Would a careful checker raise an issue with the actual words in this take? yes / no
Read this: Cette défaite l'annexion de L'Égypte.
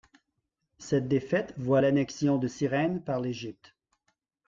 yes